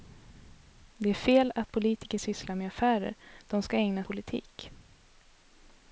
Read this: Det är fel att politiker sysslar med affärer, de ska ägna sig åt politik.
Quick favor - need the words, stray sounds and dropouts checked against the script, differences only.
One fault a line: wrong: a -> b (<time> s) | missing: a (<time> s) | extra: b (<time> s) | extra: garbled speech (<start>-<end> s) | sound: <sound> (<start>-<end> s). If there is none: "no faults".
missing: sig åt (4.0 s)